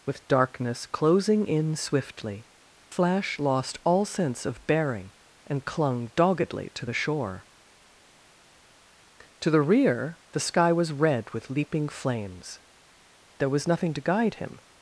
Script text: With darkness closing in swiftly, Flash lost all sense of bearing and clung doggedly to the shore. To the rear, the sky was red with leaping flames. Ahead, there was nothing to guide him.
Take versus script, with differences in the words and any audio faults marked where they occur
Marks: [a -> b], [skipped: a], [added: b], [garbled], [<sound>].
With darkness closing in swiftly, Flash lost all sense of bearing and clung doggedly to the shore. To the rear, the sky was red with leaping flames. [skipped: Ahead,] there was nothing to guide him.